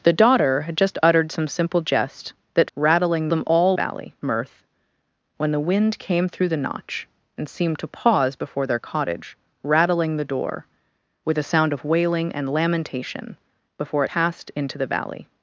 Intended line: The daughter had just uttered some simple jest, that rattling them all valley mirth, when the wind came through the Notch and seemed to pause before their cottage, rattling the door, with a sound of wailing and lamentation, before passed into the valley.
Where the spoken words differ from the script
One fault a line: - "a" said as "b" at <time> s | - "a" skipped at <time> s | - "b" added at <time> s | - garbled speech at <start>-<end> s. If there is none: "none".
none